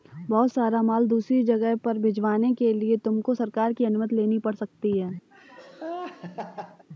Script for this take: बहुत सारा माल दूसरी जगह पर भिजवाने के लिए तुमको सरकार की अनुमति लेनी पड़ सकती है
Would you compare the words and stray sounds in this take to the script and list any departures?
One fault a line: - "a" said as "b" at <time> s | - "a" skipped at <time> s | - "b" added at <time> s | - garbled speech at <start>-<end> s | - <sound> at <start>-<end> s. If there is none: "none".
- laugh at 5.3-6.9 s